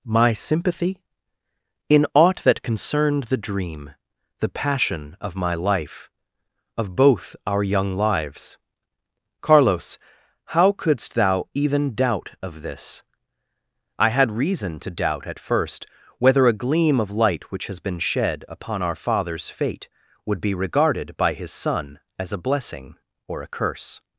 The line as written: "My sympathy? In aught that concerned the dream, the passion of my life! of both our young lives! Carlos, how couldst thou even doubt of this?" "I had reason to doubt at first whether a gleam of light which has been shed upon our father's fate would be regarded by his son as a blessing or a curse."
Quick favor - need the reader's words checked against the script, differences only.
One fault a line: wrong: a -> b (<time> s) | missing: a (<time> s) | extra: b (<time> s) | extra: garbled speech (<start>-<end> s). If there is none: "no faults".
no faults